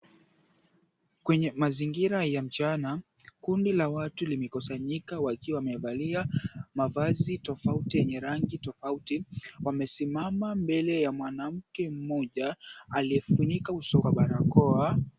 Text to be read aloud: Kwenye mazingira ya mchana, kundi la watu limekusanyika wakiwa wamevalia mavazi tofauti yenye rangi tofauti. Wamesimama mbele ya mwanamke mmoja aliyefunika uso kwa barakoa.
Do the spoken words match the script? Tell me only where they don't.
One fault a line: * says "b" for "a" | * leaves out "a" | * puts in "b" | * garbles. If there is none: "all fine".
all fine